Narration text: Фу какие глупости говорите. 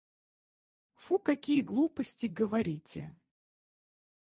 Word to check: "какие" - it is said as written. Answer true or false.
true